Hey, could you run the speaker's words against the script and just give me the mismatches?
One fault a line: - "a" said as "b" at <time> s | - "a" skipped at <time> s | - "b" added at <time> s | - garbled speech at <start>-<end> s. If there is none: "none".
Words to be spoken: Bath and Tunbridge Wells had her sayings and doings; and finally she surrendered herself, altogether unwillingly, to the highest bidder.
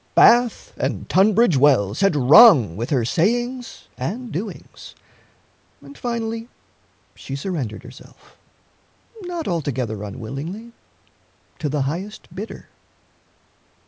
- "rung with" added at 2.2 s
- "not" added at 9.2 s